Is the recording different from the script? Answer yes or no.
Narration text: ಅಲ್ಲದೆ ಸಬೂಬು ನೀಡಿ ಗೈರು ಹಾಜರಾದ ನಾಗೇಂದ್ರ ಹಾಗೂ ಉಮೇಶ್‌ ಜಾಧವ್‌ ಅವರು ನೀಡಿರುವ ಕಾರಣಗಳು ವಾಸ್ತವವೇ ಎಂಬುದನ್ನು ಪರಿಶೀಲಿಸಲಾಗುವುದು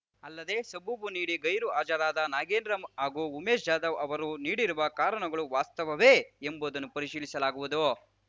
no